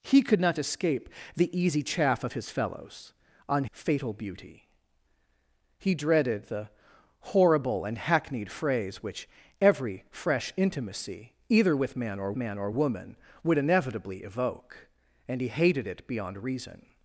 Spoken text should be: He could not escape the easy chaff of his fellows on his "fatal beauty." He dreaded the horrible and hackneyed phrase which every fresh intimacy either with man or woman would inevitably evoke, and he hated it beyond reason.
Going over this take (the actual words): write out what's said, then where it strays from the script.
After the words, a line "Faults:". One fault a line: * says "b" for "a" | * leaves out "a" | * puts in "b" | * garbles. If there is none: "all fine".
He could not escape the easy chaff of his fellows on "fatal beauty." He dreaded the horrible and hackneyed phrase which every fresh intimacy either with man or man or woman would inevitably evoke, and he hated it beyond reason.
Faults:
* leaves out "his"
* puts in "man or"